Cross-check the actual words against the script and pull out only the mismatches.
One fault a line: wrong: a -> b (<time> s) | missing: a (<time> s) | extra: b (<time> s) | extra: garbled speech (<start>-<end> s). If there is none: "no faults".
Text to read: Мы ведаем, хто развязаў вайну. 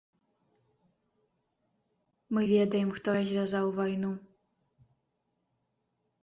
no faults